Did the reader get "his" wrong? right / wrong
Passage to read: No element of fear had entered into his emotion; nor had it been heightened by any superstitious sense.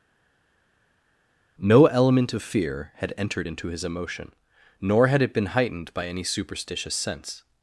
right